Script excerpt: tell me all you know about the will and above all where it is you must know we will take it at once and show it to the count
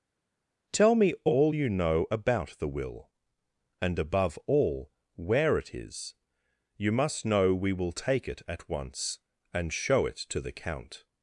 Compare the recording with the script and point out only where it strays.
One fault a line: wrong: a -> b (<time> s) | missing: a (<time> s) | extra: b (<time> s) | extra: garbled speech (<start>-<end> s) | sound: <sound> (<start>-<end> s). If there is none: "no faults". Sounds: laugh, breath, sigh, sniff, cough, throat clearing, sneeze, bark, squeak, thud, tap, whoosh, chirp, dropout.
no faults